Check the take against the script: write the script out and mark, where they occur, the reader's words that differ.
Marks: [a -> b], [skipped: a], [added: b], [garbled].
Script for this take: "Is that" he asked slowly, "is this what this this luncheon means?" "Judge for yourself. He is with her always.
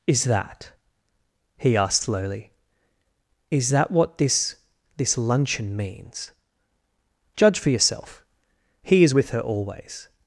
"Is that" he asked slowly, "is [this -> that] what this this luncheon means?" "Judge for yourself. He is with her always.